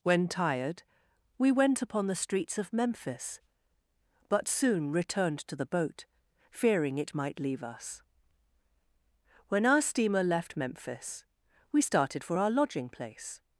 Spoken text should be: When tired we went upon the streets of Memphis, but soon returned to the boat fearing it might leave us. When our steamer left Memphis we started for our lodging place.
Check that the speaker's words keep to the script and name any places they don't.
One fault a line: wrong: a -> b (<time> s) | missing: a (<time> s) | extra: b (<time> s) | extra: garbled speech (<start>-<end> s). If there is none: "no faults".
no faults